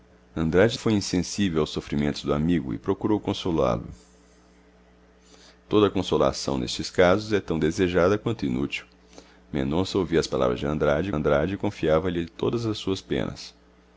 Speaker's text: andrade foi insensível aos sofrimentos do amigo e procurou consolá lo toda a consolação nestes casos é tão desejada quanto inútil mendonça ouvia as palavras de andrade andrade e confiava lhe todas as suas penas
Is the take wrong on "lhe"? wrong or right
right